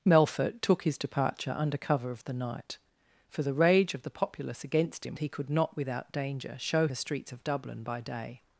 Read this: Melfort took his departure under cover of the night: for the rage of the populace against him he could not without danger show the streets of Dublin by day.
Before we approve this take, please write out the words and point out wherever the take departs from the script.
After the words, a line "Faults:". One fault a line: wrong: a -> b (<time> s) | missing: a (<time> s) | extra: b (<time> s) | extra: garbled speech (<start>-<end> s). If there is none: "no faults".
Melfort took his departure under cover of the night: for the rage of the populace against him he could not without danger show the streets of Dublin by day.
Faults:
no faults